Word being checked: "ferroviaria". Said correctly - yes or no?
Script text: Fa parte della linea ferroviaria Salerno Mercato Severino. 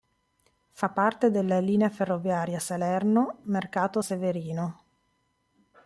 yes